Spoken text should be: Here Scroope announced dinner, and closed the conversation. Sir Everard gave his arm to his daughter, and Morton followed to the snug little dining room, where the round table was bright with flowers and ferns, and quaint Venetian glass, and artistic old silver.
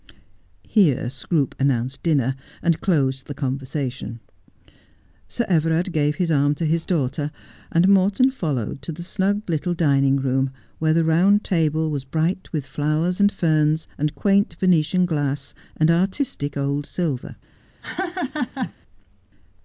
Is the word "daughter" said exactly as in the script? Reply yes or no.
yes